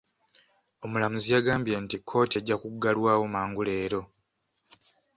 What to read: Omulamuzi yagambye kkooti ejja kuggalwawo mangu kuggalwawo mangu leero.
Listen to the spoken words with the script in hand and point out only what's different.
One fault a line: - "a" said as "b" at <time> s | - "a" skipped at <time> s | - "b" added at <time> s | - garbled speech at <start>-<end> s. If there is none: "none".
- "nti" added at 1.8 s
- "kuggalwawo mangu" skipped at 3.6 s